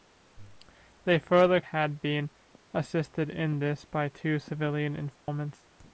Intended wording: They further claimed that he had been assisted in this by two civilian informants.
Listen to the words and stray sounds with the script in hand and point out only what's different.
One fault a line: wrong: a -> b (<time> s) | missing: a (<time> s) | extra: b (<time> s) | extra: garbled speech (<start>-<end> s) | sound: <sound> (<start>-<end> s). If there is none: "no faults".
missing: claimed that he (1.6 s)
sound: dropout (5.2-5.3 s)